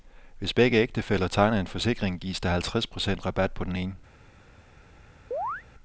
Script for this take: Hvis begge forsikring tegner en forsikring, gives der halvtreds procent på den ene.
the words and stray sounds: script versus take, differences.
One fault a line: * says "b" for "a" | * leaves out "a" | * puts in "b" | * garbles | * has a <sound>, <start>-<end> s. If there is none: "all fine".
* says "ægtefæller" for "forsikring"
* puts in "rabat"
* has a chirp, 5.3-5.6 s